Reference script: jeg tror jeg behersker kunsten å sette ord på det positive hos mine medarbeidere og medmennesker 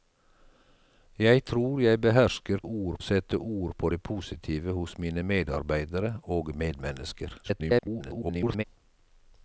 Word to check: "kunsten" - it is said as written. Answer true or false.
false